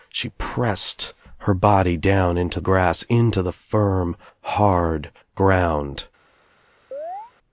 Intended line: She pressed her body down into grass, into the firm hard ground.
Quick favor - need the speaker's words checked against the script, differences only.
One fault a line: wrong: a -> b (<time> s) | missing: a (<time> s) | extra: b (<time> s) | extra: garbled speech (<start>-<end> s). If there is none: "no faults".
no faults